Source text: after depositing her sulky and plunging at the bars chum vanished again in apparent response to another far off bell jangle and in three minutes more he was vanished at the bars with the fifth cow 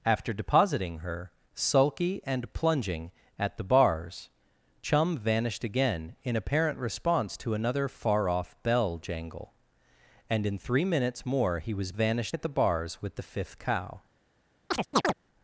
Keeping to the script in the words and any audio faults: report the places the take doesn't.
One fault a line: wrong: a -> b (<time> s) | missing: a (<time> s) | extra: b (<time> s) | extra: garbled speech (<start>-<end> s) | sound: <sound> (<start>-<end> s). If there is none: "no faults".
sound: chirp (14.7-15.1 s)